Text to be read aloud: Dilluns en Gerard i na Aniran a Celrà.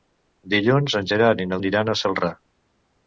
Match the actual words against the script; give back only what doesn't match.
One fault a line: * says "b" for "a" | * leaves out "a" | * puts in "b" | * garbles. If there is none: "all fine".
all fine